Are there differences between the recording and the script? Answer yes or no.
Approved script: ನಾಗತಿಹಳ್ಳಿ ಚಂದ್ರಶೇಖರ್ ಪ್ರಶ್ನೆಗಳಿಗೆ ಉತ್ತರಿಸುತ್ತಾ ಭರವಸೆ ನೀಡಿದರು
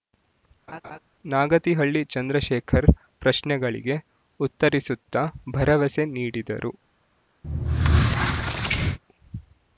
no